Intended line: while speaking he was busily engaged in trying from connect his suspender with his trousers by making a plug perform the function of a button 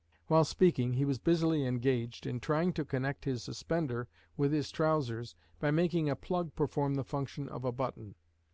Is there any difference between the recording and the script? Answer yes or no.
yes